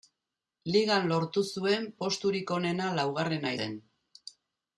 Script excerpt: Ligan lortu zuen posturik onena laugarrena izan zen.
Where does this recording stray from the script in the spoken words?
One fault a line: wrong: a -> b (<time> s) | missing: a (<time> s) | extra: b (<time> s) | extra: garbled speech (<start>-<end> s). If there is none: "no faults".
missing: izan (3.5 s)